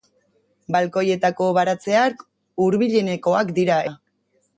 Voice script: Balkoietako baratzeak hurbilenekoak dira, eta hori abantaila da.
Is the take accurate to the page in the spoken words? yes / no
no